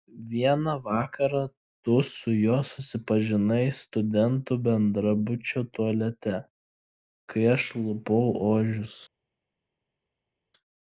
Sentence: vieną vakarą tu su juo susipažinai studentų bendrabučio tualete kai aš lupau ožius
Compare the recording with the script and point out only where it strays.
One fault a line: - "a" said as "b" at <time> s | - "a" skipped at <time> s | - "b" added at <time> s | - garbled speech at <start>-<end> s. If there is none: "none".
none